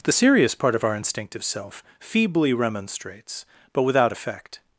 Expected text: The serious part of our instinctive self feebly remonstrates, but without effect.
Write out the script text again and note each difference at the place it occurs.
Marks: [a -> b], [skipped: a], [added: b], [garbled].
The serious part of our instinctive self feebly remonstrates, but without effect.